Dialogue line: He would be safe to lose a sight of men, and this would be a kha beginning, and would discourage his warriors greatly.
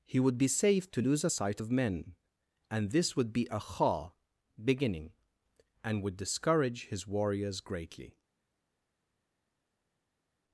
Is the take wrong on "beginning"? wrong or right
right